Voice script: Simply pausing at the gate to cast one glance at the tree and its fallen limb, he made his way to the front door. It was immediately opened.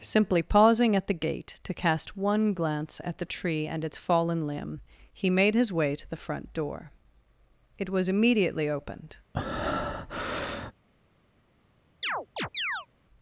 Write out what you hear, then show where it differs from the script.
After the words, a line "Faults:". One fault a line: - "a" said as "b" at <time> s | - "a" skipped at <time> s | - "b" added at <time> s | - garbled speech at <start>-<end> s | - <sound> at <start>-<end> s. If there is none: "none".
Simply pausing at the gate to cast one glance at the tree and its fallen limb, he made his way to the front door. It was immediately opened.
Faults:
- breath at 9.3-10.7 s
- chirp at 12.0-12.9 s